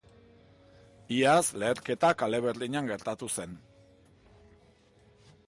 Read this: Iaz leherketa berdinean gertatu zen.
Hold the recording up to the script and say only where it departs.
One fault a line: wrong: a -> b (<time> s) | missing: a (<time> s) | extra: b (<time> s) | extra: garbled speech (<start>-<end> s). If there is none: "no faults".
extra: kale (2.2 s)